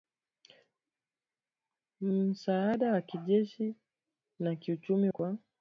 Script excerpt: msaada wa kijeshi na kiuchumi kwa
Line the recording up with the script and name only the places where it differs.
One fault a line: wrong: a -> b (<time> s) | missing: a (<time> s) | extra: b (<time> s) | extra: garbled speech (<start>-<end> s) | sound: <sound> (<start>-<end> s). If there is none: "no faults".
no faults